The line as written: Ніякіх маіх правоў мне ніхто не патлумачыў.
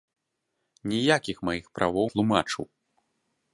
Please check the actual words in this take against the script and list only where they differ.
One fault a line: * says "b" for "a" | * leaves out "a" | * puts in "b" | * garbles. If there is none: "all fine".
* leaves out "мне ніхто не"